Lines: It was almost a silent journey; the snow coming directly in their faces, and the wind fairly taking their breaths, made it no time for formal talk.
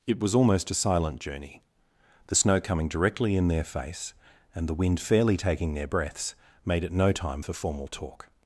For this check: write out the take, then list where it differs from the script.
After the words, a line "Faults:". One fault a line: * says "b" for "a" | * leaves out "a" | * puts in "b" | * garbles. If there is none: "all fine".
It was almost a silent journey; the snow coming directly in their face, and the wind fairly taking their breaths, made it no time for formal talk.
Faults:
* says "face" for "faces"